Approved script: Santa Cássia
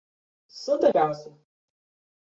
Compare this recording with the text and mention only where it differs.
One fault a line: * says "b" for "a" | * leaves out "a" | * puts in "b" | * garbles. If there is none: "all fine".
all fine